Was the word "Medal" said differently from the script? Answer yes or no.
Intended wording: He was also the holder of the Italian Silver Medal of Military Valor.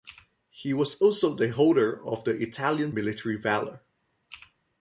yes